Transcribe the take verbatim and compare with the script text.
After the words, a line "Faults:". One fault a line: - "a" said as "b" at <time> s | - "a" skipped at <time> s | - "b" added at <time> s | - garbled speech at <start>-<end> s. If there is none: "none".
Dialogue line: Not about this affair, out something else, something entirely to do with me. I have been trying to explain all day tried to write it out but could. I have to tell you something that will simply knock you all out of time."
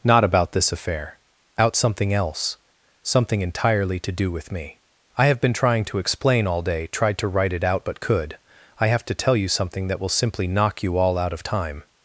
Not about this affair, out something else, something entirely to do with me. I have been trying to explain all day tried to write it out but could. I have to tell you something that will simply knock you all out of time."
Faults:
none